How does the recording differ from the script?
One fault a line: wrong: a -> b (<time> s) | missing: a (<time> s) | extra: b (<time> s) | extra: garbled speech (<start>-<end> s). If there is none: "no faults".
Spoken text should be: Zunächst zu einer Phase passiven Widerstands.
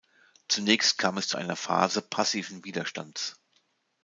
extra: kam es (1.0 s)